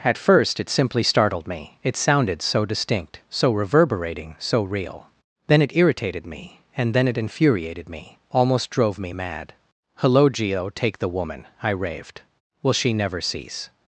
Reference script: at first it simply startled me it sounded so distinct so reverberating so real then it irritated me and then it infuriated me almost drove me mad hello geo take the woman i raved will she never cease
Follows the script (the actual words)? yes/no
yes